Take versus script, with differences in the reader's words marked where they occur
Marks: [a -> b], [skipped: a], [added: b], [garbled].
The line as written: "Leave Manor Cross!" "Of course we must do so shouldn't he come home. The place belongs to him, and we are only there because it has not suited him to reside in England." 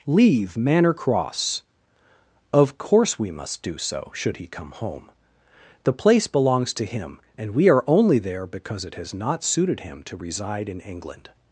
"Leave Manor Cross!" "Of course we must do so [shouldn't -> should] he come home. The place belongs to him, and we are only there because it has not suited him to reside in England."